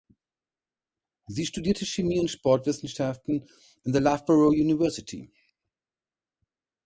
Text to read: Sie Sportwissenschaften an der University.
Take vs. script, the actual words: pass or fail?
fail